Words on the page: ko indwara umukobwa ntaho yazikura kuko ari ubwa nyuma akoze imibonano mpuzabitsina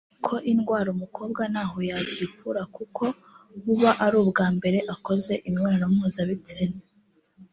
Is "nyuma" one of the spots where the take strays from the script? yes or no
yes